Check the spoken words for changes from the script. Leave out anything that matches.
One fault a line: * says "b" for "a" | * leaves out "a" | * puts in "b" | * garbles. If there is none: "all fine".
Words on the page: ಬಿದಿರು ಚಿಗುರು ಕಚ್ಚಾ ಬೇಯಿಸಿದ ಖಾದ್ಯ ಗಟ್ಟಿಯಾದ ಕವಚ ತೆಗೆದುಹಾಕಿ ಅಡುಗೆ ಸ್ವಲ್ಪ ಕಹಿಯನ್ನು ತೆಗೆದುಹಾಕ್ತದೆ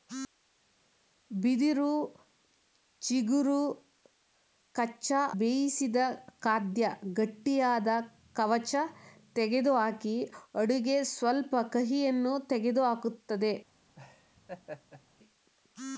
all fine